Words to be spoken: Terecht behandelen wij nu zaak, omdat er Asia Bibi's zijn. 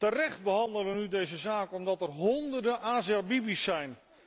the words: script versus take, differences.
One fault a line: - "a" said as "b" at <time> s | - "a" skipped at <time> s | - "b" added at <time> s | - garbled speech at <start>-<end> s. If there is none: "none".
- "deze" added at 1.1 s
- "honderden" added at 2.1 s